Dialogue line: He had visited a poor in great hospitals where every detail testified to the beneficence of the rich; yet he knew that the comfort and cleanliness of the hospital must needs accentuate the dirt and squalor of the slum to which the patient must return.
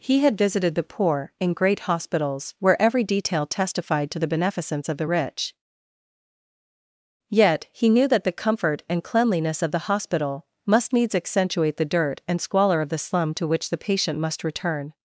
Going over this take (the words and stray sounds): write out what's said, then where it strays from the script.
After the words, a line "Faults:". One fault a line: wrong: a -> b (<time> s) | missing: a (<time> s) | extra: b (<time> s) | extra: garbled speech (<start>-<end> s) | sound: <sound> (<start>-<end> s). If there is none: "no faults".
He had visited the poor in great hospitals where every detail testified to the beneficence of the rich; yet he knew that the comfort and cleanliness of the hospital must needs accentuate the dirt and squalor of the slum to which the patient must return.
Faults:
wrong: a -> the (0.7 s)